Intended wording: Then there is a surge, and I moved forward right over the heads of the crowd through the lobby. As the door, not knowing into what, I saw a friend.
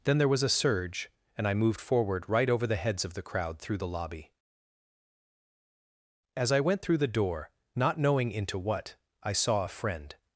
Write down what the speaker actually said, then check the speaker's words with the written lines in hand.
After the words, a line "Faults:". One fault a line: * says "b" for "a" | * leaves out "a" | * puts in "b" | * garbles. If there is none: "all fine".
Then there was a surge, and I moved forward right over the heads of the crowd through the lobby. As I went through the door, not knowing into what, I saw a friend.
Faults:
* says "was" for "is"
* puts in "I went through"